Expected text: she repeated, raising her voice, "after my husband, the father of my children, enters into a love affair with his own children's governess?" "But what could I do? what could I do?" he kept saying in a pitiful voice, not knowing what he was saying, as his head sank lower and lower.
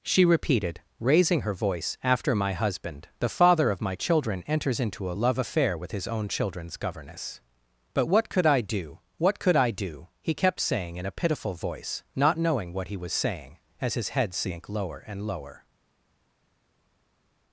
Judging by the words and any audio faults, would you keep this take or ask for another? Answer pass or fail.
pass